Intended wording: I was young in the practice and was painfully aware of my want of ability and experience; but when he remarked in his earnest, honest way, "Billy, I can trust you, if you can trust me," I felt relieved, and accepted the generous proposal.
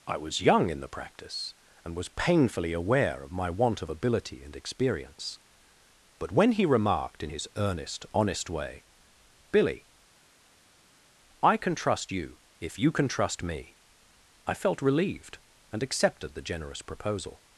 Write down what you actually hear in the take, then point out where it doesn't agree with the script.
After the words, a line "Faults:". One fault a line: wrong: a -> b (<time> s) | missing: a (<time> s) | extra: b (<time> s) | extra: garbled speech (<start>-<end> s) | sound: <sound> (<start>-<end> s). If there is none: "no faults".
I was young in the practice and was painfully aware of my want of ability and experience; but when he remarked in his earnest, honest way, "Billy, I can trust you, if you can trust me," I felt relieved, and accepted the generous proposal.
Faults:
no faults